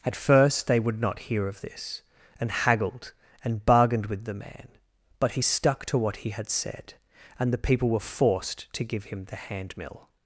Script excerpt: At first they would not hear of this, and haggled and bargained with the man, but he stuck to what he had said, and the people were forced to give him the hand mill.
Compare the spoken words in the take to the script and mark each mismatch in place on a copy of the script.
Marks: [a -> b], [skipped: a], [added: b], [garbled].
At first they would not hear of this, and haggled and bargained with the man, but he stuck to what he had said, and the people were forced to give him the hand mill.